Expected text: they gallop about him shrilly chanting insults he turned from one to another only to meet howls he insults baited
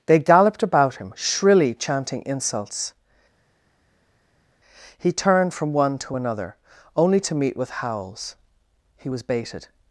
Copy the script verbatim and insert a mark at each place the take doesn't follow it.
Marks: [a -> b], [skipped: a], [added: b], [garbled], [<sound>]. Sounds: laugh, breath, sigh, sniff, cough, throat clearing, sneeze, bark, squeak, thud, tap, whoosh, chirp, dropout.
they [gallop -> galloped] about him shrilly chanting insults he turned from one to another only to meet [added: with] howls he [insults -> was] baited